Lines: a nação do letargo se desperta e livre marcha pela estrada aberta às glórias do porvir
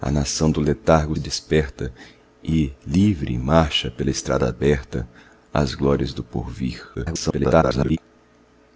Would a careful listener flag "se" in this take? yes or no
yes